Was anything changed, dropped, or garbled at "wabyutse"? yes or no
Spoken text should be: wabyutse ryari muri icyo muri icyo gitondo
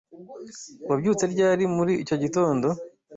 no